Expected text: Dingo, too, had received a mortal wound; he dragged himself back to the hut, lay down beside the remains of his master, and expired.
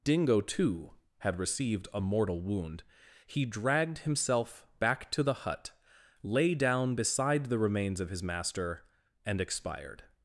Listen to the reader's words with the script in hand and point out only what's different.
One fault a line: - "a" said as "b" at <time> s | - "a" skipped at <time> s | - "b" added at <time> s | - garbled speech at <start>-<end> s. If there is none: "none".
none